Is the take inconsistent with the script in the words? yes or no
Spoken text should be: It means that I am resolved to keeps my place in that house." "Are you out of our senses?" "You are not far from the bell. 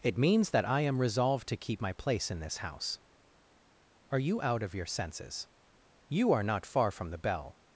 yes